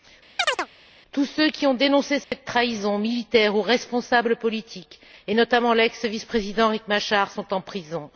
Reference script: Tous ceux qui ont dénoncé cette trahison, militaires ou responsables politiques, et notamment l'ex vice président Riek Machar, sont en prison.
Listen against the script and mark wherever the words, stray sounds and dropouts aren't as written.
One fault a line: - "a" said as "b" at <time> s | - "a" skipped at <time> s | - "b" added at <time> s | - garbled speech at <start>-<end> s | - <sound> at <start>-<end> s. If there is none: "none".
- chirp at 0.4-0.7 s
- dropout at 2.2-2.3 s